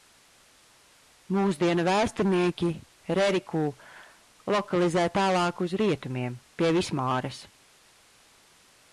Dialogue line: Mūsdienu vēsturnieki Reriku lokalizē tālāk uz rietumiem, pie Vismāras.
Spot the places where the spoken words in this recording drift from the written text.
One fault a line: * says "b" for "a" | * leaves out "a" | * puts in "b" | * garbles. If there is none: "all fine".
all fine